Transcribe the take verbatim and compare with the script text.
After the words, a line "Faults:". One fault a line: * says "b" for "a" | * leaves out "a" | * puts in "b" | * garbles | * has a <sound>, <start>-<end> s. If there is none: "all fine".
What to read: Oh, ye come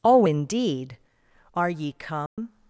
Oh, indeed! are ye come
Faults:
* puts in "indeed are"
* has a dropout, 2.3-2.4 s